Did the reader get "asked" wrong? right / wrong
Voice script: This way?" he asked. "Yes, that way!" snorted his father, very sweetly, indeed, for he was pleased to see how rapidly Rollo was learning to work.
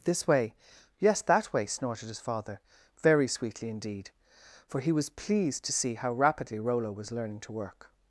wrong